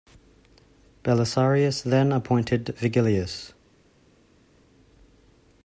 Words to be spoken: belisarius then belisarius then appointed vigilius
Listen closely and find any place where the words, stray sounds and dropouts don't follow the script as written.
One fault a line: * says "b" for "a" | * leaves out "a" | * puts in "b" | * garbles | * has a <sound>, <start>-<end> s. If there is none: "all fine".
* leaves out "belisarius then"